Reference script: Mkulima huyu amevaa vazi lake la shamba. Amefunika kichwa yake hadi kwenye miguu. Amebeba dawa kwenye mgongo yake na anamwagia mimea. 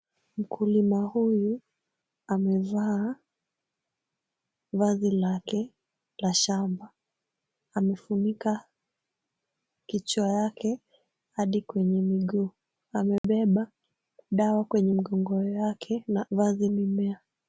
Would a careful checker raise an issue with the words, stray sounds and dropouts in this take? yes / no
yes